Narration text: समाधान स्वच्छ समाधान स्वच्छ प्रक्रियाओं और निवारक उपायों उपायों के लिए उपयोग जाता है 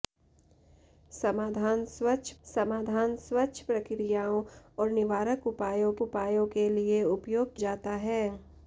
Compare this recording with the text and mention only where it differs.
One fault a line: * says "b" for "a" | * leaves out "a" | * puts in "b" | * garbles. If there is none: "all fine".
all fine